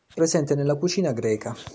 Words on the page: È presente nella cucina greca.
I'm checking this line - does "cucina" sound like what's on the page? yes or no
yes